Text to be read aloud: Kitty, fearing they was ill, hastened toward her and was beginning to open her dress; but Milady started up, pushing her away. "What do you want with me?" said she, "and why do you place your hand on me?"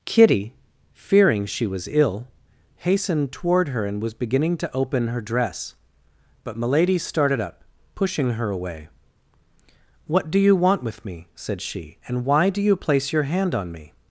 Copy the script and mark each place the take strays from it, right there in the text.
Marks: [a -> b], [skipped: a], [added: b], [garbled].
Kitty, fearing [they -> she] was ill, hastened toward her and was beginning to open her dress; but Milady started up, pushing her away. "What do you want with me?" said she, "and why do you place your hand on me?"